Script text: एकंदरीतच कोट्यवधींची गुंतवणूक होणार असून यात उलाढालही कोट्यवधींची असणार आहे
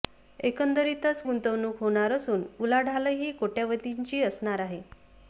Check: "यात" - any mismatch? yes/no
yes